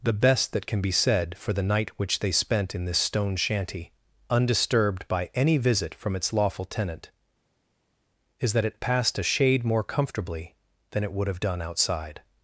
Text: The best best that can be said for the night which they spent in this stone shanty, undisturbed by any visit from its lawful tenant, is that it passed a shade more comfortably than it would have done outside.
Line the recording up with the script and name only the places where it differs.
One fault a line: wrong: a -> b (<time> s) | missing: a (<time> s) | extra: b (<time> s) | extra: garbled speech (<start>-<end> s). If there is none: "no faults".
missing: best (0.5 s)